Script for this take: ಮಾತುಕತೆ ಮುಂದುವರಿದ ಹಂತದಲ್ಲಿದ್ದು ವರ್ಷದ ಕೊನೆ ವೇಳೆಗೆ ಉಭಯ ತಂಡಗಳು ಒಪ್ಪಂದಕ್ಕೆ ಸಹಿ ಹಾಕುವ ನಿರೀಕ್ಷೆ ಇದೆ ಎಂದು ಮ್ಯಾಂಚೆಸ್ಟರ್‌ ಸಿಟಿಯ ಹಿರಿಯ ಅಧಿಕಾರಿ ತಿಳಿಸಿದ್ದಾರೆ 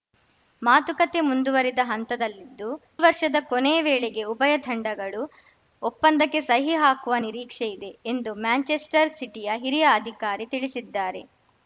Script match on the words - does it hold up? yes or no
yes